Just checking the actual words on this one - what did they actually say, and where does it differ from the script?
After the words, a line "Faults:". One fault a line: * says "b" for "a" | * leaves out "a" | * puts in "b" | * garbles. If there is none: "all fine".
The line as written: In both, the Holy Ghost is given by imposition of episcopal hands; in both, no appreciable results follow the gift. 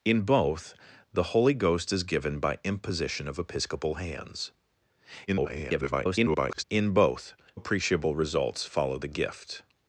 In both, the Holy Ghost is given by imposition of episcopal hands; [garbled] in both, appreciable results follow the gift.
Faults:
* garbles
* leaves out "no"